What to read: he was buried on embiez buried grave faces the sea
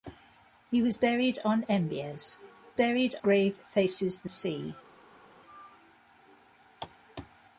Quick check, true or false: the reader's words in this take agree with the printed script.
true